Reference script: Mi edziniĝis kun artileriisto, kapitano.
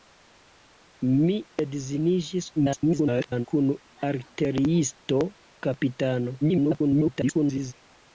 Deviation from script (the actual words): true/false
true